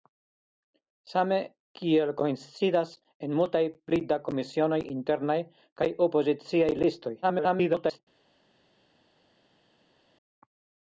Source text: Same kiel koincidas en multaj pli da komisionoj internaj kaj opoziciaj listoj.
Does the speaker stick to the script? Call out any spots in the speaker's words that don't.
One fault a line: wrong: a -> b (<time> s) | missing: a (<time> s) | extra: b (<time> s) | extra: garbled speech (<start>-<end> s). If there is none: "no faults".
extra: garbled speech (7.2-8.0 s)